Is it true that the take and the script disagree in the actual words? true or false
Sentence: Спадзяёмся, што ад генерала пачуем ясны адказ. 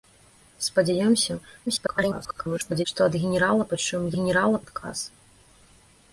true